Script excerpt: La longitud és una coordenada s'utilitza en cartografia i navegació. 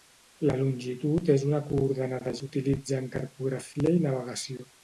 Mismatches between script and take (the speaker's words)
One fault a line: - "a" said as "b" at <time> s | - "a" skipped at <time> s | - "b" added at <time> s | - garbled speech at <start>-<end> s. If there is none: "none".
none